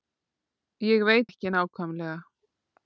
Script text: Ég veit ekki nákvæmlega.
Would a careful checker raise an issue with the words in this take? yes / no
no